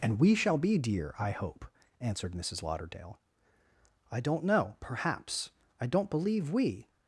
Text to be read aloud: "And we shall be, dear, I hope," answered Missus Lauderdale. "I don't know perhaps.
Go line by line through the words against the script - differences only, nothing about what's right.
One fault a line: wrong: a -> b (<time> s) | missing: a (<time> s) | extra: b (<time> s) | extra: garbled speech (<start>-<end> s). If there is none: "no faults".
extra: I don't believe we (5.8 s)